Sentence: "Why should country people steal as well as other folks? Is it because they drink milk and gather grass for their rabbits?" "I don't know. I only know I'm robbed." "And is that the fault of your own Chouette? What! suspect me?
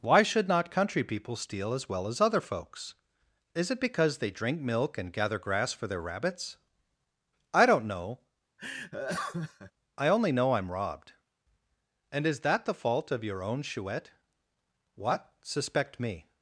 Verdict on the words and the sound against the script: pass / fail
fail